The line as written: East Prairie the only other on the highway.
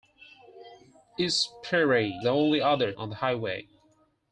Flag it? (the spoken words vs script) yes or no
no